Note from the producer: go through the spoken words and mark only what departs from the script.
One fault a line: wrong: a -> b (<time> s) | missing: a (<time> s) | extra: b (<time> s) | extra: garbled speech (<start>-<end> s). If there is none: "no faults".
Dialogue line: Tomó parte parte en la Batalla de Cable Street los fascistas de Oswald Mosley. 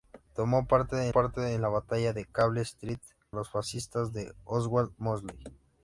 no faults